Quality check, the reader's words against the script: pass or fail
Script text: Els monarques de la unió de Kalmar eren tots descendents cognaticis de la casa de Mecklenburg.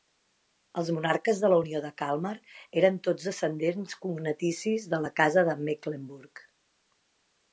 pass